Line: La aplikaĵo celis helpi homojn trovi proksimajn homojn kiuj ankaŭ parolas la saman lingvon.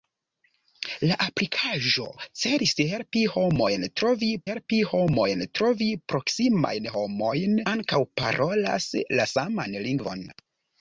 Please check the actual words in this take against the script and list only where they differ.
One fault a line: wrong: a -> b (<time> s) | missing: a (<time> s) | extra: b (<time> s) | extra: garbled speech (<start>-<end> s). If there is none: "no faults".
extra: helpi homojn trovi (4.5 s)
missing: kiuj (7.6 s)